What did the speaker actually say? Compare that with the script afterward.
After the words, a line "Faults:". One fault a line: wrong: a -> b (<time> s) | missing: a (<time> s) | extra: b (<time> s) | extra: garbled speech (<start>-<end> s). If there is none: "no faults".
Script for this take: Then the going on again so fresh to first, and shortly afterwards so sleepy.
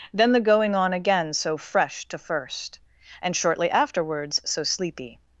Then the going on again so fresh to first, and shortly afterwards so sleepy.
Faults:
no faults